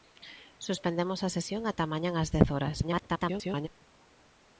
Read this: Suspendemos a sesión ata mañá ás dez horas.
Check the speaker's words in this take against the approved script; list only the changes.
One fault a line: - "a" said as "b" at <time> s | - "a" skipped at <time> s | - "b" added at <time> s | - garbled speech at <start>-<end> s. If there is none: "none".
- garbled speech at 2.8-3.7 s